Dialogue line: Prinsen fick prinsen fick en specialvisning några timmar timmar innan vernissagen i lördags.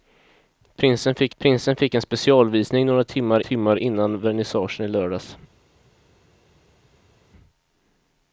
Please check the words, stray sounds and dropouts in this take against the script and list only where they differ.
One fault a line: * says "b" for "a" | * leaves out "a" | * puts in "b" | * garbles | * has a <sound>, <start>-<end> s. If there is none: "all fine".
all fine